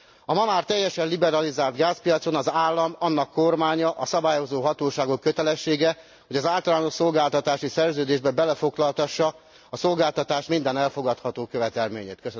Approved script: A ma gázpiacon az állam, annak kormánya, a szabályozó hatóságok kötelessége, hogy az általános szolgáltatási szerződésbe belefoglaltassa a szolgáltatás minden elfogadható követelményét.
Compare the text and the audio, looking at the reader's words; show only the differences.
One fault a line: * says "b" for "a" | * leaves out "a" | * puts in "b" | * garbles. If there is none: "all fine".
* puts in "már teljesen liberalizált"